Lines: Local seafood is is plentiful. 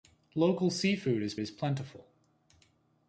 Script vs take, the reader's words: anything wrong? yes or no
no